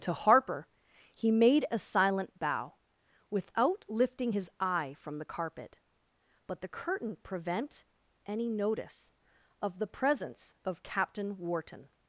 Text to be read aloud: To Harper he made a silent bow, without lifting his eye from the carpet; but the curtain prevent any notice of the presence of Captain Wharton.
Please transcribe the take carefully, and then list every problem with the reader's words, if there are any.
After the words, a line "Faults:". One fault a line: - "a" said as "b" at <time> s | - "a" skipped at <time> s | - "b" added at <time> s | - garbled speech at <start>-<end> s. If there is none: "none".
To Harper he made a silent bow, without lifting his eye from the carpet; but the curtain prevent any notice of the presence of Captain Wharton.
Faults:
none